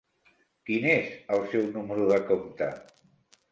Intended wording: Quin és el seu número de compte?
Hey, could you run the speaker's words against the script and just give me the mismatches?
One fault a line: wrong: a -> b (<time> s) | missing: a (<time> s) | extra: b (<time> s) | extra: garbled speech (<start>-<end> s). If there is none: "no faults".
no faults